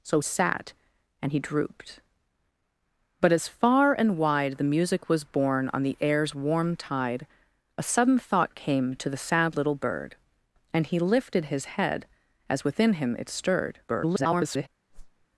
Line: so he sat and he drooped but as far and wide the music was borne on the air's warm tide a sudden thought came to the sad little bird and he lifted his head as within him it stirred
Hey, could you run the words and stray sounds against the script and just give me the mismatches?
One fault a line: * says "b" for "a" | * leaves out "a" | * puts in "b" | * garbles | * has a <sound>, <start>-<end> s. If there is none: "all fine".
* leaves out "he"
* garbles
* has a whoosh, 14.9-15.3 s